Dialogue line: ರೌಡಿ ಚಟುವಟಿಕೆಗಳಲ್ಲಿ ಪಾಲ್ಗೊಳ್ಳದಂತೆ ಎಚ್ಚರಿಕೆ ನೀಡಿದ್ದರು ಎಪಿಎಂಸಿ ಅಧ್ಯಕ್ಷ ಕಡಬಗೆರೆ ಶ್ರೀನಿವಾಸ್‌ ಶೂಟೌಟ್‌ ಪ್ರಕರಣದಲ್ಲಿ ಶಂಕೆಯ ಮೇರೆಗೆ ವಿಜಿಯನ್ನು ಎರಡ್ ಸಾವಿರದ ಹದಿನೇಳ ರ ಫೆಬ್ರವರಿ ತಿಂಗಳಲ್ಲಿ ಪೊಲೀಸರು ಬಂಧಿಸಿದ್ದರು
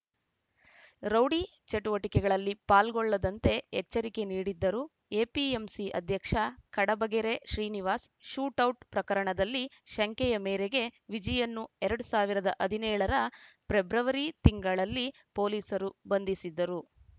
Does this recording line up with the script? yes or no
yes